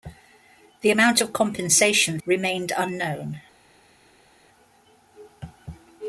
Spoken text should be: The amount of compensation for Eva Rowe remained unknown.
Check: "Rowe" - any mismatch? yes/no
yes